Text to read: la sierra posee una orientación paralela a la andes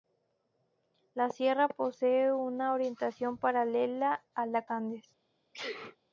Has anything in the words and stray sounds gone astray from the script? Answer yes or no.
yes